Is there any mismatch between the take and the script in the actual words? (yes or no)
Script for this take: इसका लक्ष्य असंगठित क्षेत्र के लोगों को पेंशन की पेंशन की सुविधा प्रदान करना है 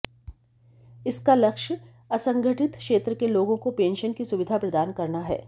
yes